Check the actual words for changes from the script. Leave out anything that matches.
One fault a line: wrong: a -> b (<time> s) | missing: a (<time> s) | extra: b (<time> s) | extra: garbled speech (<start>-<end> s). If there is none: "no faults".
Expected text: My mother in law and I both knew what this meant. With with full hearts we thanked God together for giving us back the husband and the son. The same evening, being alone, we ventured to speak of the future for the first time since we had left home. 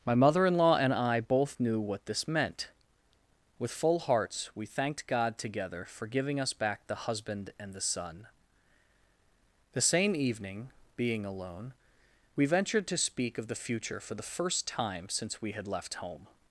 missing: with (3.7 s)